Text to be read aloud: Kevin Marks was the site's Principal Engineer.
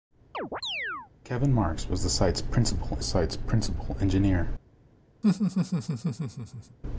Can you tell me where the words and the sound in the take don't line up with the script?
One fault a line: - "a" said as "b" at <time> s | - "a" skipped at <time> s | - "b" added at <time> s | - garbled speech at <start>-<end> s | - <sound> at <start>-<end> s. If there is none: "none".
- chirp at 0.3-1.1 s
- "site's Principal" added at 3.0 s
- laugh at 5.2-6.8 s